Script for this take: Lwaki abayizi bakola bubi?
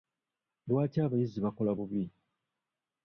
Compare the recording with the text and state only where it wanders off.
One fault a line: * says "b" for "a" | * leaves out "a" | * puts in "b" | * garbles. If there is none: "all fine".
all fine